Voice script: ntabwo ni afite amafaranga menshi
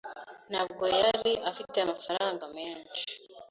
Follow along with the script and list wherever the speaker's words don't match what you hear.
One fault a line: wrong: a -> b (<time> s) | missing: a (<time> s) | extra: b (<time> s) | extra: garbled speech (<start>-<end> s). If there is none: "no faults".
wrong: ni -> yari (1.0 s)